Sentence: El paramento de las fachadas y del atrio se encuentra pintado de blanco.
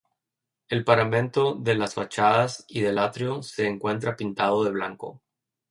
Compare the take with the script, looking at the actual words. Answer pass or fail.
pass